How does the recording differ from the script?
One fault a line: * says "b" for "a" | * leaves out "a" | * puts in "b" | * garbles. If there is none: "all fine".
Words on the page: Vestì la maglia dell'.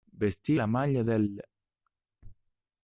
all fine